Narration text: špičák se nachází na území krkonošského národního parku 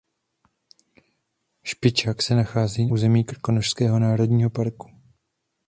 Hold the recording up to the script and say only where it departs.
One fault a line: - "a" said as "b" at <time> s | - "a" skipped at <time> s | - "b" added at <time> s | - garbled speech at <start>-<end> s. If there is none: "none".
- "na" skipped at 2.9 s